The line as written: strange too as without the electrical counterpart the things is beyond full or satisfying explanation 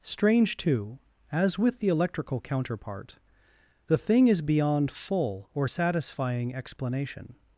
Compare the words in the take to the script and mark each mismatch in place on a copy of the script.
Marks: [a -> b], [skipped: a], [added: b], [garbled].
strange too as [without -> with] the electrical counterpart the [things -> thing] is beyond full or satisfying explanation